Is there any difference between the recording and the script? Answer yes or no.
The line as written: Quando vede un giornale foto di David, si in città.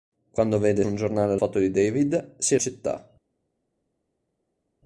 no